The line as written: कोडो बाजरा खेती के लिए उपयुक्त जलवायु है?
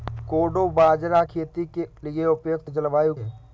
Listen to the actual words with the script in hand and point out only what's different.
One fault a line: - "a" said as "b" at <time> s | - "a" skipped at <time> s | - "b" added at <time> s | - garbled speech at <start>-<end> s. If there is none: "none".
none